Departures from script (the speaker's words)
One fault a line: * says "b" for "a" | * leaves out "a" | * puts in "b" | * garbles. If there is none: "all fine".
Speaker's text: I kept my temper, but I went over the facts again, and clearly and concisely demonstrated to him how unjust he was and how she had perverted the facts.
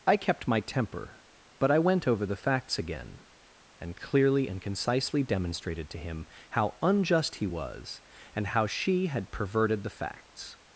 all fine